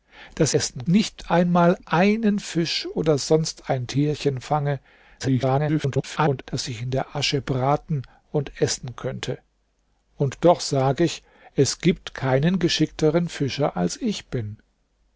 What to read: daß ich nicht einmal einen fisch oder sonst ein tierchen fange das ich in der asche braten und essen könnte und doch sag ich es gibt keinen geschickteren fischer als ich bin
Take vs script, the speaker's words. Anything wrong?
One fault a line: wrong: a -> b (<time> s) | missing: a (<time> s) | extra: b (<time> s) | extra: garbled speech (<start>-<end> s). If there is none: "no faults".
wrong: ich -> essen (0.5 s)
extra: garbled speech (5.2-6.4 s)